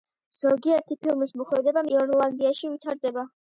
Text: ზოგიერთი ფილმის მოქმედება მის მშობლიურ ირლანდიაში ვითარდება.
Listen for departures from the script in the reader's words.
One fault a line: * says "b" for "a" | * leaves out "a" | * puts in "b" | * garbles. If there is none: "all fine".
* leaves out "მის მშობლიურ"